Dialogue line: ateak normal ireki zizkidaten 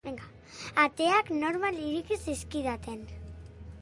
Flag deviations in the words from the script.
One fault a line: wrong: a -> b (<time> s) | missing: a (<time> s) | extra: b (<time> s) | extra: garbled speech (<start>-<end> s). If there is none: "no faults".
no faults